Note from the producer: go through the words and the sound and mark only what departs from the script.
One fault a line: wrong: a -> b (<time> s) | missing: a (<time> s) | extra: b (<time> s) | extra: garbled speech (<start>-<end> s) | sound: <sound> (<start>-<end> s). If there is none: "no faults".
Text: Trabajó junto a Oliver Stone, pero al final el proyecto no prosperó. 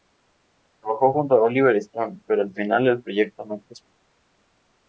no faults